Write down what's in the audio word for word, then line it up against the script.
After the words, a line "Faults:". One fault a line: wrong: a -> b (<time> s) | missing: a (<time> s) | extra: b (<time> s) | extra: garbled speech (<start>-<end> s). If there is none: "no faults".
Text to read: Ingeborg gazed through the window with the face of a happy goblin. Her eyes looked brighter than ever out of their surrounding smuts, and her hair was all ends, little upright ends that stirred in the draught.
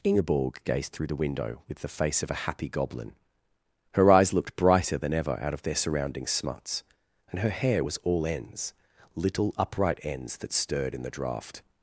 Ingeborg gazed through the window with the face of a happy goblin. Her eyes looked brighter than ever out of their surrounding smuts, and her hair was all ends, little upright ends that stirred in the draught.
Faults:
no faults